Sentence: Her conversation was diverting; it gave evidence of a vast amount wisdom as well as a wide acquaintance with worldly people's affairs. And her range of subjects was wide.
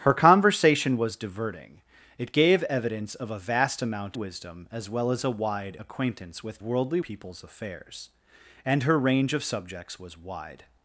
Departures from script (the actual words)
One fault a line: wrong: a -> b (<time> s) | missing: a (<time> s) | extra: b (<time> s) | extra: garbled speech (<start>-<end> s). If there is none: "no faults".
no faults